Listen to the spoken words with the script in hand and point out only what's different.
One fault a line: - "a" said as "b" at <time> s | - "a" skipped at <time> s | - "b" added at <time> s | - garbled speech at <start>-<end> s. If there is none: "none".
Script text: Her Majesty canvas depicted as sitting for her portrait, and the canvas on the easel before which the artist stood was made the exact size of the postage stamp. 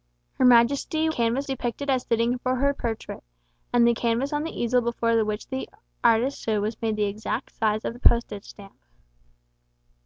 none